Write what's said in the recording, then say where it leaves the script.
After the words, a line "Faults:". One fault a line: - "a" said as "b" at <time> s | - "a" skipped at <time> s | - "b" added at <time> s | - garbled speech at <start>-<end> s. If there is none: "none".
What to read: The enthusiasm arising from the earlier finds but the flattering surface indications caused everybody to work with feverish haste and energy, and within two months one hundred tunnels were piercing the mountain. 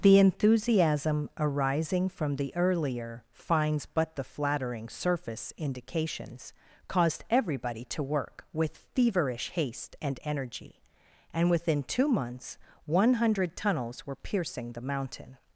The enthusiasm arising from the earlier finds but the flattering surface indications caused everybody to work with feverish haste and energy, and within two months one hundred tunnels were piercing the mountain.
Faults:
none